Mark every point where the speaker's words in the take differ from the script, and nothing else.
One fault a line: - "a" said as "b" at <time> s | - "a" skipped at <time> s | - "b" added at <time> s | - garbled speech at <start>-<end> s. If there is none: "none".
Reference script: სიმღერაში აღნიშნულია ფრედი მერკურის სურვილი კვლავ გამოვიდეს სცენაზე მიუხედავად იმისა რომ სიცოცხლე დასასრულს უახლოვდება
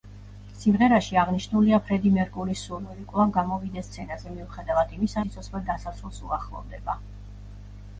- "რომ" skipped at 5.2 s